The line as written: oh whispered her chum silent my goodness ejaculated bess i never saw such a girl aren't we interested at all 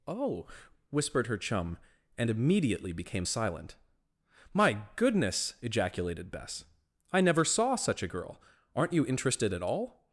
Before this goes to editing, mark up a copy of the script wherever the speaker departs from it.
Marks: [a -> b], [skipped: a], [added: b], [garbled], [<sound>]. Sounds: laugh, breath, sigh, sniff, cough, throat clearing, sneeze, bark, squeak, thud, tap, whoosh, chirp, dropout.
oh whispered her chum [added: and immediately became] silent my goodness ejaculated bess i never saw such a girl aren't [we -> you] interested at all